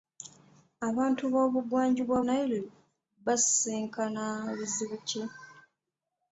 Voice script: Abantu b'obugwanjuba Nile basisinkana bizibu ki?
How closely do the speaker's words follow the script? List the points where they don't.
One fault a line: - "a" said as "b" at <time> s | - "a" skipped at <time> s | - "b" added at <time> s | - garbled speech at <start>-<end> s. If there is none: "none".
none